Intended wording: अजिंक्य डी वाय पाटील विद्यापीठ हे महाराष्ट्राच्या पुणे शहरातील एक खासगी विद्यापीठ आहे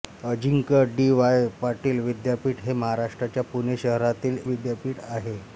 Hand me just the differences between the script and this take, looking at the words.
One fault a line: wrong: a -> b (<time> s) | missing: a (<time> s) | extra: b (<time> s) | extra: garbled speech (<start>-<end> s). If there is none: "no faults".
missing: एक खासगी (4.4 s)